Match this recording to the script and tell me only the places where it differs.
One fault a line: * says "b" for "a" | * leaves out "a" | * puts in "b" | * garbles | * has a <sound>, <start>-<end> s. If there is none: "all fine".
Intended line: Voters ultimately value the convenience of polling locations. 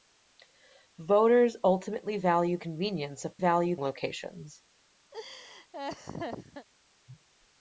* leaves out "the"
* says "value" for "polling"
* has a laugh, 5.1-6.7 s